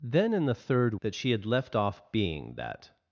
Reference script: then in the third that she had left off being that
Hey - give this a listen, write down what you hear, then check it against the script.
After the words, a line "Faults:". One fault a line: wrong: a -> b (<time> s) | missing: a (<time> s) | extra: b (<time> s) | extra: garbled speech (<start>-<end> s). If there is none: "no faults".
then in the third that she had left off being that
Faults:
no faults